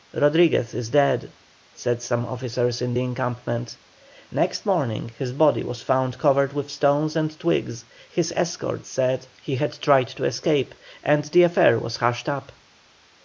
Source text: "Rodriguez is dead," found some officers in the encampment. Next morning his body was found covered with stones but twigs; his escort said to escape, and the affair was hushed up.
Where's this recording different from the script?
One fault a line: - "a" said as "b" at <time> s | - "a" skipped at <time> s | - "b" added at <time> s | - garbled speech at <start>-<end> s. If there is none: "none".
- "found" said as "said" at 1.7 s
- "but" said as "and" at 7.2 s
- "he had tried" added at 9.4 s